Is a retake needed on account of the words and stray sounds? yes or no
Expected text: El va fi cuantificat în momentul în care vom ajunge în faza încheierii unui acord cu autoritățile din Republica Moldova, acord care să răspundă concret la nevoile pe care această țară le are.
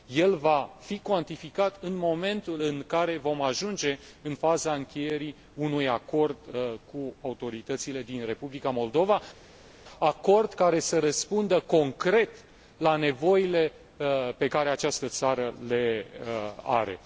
no